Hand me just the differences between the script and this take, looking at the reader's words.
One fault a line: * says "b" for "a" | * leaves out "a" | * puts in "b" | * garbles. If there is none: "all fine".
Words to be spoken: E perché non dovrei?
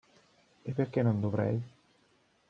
all fine